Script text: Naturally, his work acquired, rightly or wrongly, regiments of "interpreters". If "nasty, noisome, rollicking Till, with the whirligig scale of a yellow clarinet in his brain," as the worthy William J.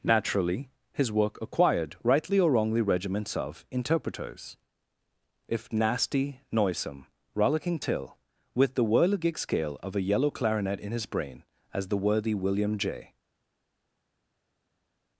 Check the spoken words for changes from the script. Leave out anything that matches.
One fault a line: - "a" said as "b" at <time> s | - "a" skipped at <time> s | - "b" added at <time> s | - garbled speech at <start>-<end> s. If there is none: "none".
none